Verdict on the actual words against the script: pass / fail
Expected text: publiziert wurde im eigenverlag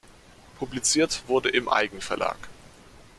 pass